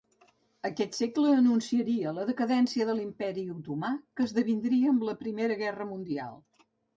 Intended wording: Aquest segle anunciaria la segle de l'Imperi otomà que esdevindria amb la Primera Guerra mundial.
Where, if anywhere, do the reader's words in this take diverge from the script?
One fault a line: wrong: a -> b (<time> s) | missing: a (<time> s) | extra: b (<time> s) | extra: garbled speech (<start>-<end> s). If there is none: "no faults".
wrong: segle -> decadència (2.3 s)